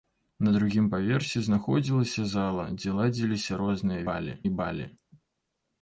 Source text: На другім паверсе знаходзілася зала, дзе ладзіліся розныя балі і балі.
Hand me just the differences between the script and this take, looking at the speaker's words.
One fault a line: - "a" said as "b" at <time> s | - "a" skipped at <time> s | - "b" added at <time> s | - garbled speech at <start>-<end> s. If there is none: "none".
none